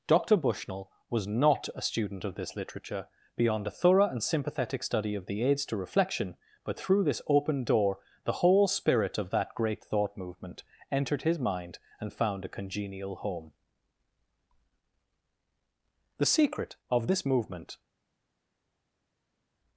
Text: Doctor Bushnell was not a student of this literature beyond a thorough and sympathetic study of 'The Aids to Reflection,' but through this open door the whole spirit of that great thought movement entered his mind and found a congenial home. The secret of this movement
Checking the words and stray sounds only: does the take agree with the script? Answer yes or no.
yes